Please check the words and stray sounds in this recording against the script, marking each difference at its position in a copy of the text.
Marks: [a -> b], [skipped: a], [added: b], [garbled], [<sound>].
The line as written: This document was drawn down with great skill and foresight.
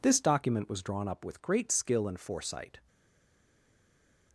This document was drawn [down -> up] with great skill and foresight.